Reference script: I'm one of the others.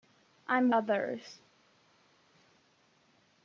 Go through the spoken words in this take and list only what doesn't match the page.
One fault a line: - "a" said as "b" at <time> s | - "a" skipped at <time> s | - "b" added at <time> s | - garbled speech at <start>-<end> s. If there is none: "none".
- "one of the" skipped at 0.7 s